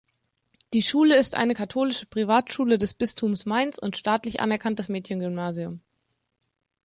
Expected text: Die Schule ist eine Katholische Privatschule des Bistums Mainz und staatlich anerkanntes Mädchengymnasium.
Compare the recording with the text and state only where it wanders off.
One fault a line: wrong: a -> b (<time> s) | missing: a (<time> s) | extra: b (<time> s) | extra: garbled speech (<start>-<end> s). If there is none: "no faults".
no faults